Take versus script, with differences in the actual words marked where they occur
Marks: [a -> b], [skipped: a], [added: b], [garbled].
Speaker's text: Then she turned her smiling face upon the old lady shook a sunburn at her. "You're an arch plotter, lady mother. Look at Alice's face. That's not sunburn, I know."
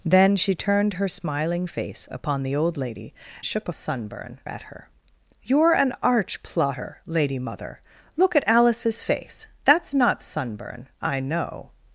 Then she turned her smiling face upon the old lady shook a sunburn at her. "You're an arch plotter, lady mother. Look at Alice's face. That's not sunburn, I know."